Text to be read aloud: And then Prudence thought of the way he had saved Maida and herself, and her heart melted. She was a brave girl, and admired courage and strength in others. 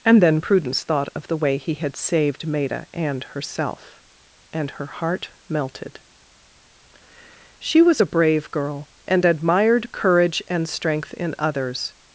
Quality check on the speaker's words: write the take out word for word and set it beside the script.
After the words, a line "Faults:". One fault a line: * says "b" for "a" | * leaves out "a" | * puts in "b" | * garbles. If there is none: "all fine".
And then Prudence thought of the way he had saved Maida and herself, and her heart melted. She was a brave girl, and admired courage and strength in others.
Faults:
all fine